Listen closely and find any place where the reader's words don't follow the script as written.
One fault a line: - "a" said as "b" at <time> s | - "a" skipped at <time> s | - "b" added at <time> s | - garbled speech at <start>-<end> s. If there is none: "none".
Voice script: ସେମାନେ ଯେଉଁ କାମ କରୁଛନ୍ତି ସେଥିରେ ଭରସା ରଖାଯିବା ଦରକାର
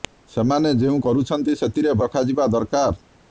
- "କାମ" skipped at 0.9 s
- "ଭରସା" skipped at 2.0 s